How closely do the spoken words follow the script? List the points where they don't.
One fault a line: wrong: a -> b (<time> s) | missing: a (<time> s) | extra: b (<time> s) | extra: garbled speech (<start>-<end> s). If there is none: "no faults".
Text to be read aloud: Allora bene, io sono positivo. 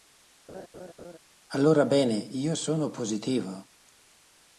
no faults